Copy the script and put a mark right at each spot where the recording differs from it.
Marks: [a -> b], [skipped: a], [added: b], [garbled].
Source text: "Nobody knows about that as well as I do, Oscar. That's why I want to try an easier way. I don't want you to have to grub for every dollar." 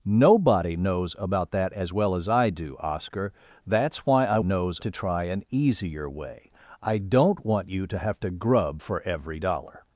"Nobody knows about that as well as I do, Oscar. That's why I [want -> knows] to try an easier way. I don't want you to have to grub for every dollar."